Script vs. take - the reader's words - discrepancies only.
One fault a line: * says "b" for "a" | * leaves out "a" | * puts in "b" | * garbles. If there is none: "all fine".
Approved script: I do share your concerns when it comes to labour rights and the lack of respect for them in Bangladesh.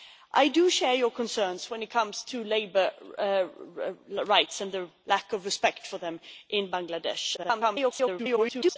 * garbles